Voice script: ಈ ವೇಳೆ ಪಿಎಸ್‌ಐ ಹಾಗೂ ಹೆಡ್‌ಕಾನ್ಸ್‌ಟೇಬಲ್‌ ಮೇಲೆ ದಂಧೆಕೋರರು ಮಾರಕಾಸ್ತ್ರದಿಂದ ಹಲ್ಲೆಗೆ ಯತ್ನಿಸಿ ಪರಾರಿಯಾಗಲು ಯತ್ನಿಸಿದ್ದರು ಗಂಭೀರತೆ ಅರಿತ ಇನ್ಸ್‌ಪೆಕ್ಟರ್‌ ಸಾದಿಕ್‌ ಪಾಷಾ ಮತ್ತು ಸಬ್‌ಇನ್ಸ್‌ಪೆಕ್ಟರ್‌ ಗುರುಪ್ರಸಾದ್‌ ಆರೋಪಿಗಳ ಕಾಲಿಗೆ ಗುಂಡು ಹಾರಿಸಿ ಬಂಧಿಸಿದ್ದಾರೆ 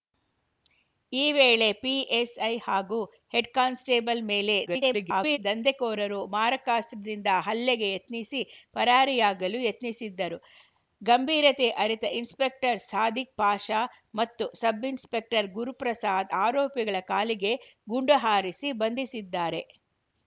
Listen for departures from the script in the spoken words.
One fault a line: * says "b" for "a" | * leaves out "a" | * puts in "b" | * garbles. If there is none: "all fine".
* garbles